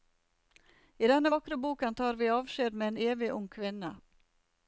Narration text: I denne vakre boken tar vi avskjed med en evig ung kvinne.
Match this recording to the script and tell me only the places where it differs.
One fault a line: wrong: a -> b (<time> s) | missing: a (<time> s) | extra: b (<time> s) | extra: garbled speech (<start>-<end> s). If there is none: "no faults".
no faults